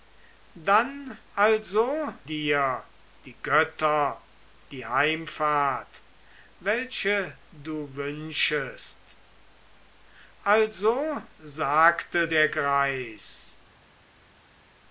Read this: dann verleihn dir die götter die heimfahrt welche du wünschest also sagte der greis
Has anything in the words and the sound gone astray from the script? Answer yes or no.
yes